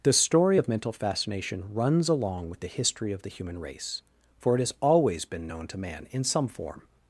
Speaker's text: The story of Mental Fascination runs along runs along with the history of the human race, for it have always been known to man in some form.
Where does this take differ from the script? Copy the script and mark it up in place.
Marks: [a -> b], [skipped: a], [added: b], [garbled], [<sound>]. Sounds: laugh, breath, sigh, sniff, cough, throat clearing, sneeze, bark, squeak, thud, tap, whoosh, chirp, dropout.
The story of Mental Fascination runs along [skipped: runs along] with the history of the human race, for it [have -> has] always been known to man in some form.